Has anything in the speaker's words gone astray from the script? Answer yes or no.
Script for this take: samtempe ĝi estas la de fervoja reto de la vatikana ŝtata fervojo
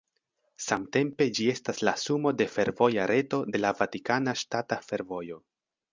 yes